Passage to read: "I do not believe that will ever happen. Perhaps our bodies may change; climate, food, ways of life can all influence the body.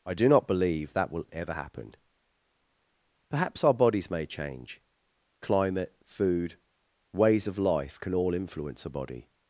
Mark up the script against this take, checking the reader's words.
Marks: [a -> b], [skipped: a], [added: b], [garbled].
"I do not believe that will ever happen. Perhaps our bodies may change; climate, food, ways of life can all influence [the -> a] body.